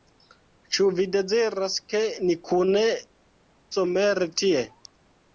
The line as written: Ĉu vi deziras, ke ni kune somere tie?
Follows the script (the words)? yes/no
yes